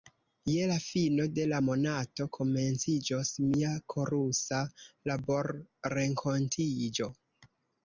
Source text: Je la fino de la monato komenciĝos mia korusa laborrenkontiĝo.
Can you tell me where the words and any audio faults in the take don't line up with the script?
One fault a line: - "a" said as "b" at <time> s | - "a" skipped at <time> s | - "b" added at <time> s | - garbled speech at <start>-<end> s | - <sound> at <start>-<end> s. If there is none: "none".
none